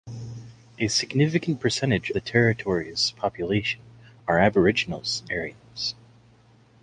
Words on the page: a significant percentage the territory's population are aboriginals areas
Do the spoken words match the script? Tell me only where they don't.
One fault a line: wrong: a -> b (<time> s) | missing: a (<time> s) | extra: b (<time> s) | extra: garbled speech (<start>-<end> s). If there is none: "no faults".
no faults